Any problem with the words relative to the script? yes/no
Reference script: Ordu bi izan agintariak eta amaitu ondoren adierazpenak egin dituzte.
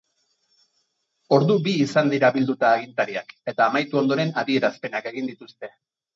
yes